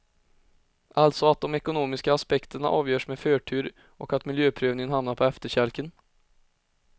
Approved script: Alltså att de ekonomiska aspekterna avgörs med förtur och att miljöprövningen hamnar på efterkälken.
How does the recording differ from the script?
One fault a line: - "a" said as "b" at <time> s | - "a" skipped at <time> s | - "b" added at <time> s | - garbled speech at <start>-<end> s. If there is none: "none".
none